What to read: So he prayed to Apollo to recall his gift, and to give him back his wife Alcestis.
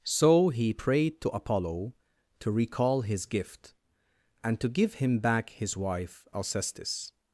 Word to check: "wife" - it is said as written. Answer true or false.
true